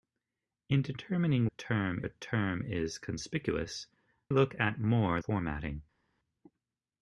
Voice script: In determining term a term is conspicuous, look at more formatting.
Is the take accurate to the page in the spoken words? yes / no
yes